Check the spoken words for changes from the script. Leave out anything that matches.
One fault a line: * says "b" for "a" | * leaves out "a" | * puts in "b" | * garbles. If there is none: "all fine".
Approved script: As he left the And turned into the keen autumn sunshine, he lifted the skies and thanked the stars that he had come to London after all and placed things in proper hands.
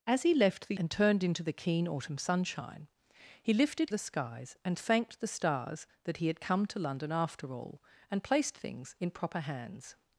all fine